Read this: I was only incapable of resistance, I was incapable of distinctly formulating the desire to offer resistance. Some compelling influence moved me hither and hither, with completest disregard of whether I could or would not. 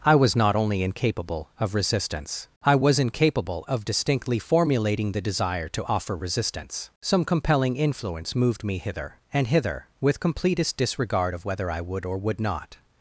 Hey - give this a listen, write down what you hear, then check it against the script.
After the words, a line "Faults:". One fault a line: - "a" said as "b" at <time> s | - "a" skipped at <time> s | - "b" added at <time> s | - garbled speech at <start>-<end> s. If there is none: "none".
I was not only incapable of resistance, I was incapable of distinctly formulating the desire to offer resistance. Some compelling influence moved me hither and hither, with completest disregard of whether I would or would not.
Faults:
- "not" added at 0.3 s
- "could" said as "would" at 11.8 s